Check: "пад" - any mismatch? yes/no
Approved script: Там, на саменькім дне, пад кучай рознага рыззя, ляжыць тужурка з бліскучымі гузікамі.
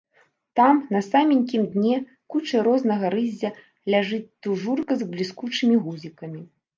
yes